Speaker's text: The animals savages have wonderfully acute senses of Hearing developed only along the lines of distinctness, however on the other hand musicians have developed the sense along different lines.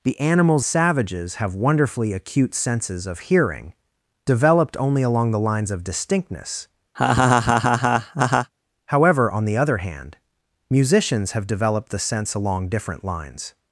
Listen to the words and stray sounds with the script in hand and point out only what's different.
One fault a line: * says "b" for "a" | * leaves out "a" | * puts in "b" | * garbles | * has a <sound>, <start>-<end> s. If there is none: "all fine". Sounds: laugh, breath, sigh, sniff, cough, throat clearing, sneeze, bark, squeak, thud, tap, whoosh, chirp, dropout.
* has a laugh, 6.9-8.5 s